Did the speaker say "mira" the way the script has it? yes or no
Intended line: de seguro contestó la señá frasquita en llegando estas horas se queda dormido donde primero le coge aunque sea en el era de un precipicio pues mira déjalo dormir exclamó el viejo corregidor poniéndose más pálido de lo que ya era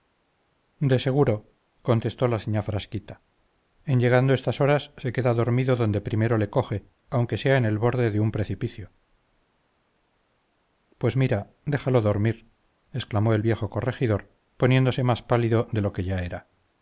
yes